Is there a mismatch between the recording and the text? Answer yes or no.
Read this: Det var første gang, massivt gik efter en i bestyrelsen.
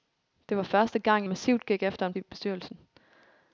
no